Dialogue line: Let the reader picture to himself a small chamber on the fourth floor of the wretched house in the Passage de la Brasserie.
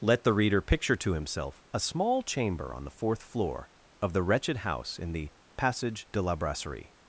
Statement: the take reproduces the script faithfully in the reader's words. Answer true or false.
true